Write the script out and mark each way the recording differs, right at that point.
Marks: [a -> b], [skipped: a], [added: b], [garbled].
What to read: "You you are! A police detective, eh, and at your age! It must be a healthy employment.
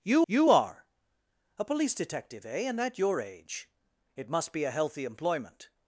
"You you are! A police detective, eh, and at your age! It must be a healthy employment.